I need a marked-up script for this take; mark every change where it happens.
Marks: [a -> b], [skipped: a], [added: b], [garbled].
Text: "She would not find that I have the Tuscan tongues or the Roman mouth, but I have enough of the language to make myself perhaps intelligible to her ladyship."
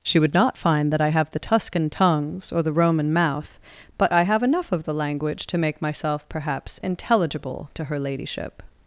"She would not find that I have the Tuscan tongues or the Roman mouth, but I have enough of the language to make myself perhaps intelligible to her ladyship."